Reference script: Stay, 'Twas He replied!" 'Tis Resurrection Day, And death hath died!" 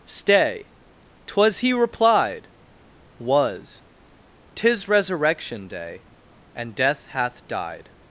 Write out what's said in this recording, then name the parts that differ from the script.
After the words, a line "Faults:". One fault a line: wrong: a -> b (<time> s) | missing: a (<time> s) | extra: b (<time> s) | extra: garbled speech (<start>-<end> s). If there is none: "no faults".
Stay, 'Twas He replied!" was 'Tis Resurrection Day, And death hath died!"
Faults:
extra: was (3.2 s)